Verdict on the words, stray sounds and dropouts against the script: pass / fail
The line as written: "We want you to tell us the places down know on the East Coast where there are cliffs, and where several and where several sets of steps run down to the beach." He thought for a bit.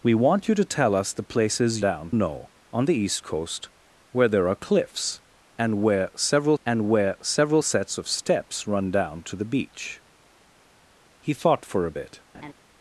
fail